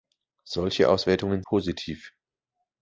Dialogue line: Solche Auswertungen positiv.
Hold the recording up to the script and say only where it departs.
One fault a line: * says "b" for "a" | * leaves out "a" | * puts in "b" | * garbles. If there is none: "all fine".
all fine